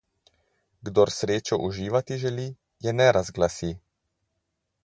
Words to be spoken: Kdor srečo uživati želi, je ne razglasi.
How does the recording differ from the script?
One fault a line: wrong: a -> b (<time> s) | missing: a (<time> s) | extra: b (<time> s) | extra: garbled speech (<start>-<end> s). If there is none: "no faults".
no faults